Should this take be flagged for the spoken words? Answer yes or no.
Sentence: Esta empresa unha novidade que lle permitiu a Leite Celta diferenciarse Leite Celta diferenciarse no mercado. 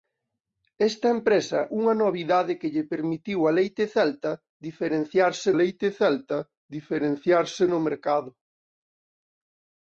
no